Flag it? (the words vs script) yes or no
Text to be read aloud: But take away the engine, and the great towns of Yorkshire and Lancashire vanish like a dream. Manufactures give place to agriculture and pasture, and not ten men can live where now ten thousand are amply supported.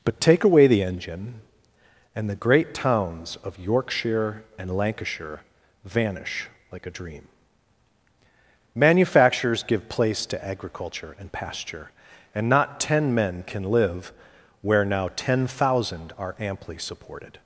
no